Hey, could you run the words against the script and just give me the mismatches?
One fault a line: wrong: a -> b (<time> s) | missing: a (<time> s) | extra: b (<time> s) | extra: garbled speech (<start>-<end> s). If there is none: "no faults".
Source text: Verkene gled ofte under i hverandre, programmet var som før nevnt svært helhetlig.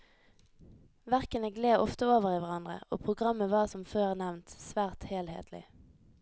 wrong: under -> over (2.1 s)
extra: og (2.9 s)